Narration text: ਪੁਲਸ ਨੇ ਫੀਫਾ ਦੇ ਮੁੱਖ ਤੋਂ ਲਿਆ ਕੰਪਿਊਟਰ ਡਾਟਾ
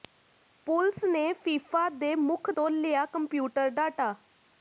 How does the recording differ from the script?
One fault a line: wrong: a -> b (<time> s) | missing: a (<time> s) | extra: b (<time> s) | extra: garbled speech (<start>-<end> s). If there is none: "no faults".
no faults